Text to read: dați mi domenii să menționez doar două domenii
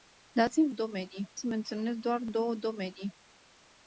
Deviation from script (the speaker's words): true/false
false